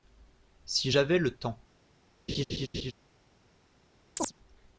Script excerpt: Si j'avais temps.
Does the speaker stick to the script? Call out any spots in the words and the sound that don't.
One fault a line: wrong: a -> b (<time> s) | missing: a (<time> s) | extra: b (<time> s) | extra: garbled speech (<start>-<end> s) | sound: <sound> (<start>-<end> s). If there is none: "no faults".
extra: le (1.2 s)
sound: laugh (2.3-2.9 s)
sound: chirp (4.2-4.3 s)